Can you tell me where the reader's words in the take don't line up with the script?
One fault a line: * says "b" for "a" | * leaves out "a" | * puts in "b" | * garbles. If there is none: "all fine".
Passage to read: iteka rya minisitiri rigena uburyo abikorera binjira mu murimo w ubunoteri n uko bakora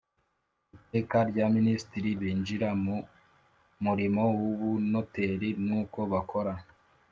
* leaves out "rigena uburyo abikorera"